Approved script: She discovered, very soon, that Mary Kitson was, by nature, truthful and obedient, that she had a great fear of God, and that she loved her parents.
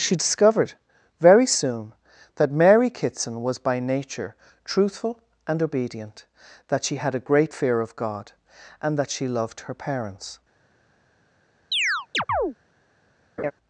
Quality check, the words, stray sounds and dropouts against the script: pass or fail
fail